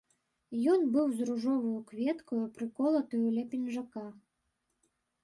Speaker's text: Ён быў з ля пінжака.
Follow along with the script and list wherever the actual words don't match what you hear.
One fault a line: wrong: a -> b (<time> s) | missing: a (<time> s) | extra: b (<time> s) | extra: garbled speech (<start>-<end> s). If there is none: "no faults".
extra: ружоваю кветкаю прыколатаю (1.3 s)